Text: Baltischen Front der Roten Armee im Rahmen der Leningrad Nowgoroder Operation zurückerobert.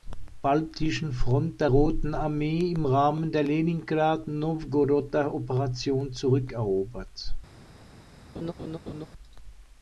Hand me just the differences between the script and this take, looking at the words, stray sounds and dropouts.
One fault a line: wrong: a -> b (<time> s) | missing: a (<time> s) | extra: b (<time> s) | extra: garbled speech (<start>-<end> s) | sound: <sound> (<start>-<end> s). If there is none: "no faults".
sound: laugh (8.3-9.1 s)